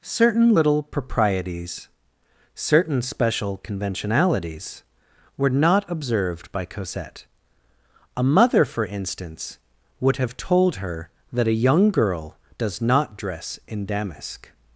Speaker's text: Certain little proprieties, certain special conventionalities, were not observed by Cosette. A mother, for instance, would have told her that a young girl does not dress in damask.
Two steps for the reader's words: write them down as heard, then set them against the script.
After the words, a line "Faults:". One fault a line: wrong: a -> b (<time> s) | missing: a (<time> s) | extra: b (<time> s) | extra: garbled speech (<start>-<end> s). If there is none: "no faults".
Certain little proprieties, certain special conventionalities, were not observed by Cosette. A mother, for instance, would have told her that a young girl does not dress in damask.
Faults:
no faults